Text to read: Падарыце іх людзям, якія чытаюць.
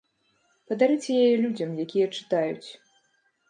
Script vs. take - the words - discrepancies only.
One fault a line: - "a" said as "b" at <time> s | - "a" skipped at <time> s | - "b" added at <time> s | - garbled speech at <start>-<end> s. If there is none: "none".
- "іх" said as "яе" at 1.2 s